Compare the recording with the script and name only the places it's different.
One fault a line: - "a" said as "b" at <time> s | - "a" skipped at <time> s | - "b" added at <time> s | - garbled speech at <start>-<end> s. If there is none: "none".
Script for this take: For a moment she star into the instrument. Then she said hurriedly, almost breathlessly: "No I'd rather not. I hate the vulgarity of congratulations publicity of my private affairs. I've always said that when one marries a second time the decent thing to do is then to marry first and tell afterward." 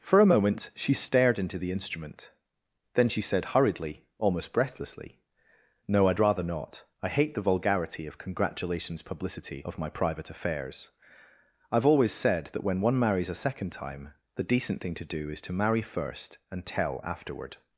- "star" said as "stared" at 0.9 s
- "then" skipped at 15.4 s